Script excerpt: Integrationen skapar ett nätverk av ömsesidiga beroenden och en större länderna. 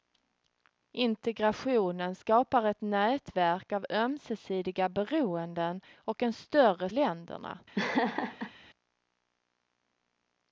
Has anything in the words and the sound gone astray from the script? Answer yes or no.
yes